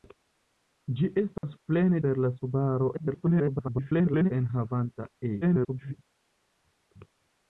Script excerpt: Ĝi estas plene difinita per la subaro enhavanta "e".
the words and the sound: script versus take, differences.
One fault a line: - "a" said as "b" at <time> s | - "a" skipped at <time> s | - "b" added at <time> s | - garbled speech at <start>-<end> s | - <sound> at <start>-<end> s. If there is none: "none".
- dropout at 1.4-1.4 s
- "difinita" skipped at 2.0 s
- garbled speech at 2.9-4.3 s
- garbled speech at 5.4-5.9 s